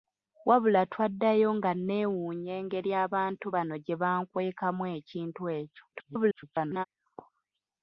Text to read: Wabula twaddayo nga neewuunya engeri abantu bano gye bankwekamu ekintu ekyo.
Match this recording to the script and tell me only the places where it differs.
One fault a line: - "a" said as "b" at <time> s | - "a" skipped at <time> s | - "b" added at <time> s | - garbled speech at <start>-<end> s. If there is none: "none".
- garbled speech at 5.9-6.8 s